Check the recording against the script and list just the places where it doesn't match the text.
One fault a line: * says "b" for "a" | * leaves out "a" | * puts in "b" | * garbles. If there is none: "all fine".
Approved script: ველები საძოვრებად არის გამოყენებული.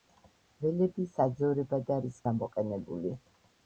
all fine